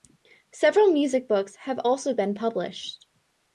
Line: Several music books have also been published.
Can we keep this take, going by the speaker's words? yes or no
yes